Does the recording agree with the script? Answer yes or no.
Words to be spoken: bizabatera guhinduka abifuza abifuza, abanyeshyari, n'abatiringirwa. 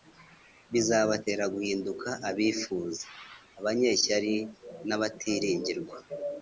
no